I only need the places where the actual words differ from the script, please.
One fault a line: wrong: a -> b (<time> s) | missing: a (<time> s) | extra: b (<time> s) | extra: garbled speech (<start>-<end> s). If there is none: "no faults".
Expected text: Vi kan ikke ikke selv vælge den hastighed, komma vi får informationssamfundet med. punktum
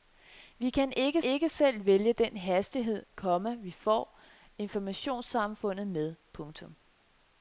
no faults